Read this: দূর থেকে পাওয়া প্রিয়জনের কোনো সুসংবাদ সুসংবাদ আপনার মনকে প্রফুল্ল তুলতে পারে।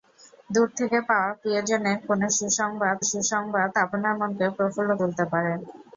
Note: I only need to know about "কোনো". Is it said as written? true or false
true